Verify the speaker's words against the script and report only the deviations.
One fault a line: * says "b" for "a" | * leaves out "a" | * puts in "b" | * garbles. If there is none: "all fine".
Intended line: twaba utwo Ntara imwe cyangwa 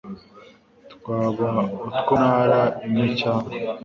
all fine